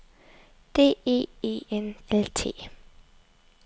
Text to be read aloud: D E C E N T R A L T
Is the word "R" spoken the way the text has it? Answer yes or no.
no